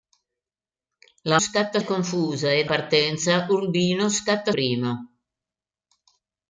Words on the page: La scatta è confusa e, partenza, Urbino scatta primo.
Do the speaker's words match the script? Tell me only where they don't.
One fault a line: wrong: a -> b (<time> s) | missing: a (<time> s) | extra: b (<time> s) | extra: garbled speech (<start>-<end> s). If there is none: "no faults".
no faults